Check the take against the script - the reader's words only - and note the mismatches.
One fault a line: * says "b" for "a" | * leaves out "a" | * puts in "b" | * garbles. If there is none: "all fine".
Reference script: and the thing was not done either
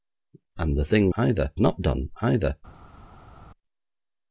* says "either" for "was"